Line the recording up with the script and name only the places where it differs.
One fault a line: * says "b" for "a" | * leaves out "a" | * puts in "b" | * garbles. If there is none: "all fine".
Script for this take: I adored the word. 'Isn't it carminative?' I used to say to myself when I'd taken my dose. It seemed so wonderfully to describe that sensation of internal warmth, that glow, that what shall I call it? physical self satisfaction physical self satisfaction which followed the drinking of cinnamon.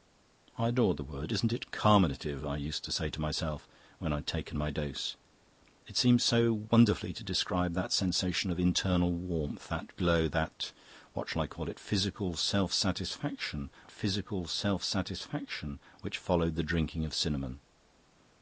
all fine